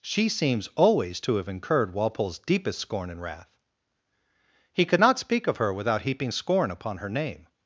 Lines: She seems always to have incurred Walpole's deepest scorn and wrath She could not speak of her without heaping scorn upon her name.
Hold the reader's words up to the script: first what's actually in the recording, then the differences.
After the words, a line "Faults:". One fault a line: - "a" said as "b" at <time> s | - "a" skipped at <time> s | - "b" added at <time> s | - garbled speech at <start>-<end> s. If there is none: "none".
She seems always to have incurred Walpole's deepest scorn and wrath He could not speak of her without heaping scorn upon her name.
Faults:
- "She" said as "He" at 4.7 s